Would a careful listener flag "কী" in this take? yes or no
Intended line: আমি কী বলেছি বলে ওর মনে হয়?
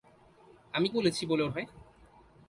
yes